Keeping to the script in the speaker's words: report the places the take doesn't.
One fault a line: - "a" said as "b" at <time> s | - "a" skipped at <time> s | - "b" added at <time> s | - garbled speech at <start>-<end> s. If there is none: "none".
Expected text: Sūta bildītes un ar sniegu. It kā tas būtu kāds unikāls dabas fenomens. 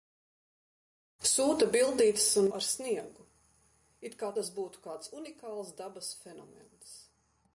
none